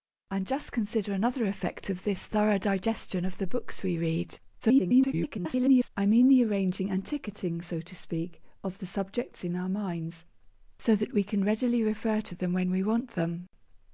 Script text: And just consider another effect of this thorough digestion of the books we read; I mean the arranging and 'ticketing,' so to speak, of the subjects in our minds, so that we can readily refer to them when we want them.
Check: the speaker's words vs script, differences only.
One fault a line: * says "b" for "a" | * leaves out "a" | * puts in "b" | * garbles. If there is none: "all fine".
* garbles